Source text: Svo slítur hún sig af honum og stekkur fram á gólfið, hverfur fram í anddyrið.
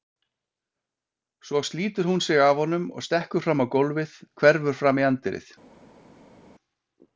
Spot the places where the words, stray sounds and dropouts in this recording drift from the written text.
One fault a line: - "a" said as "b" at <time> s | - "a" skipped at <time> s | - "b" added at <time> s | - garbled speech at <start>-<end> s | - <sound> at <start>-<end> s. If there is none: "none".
none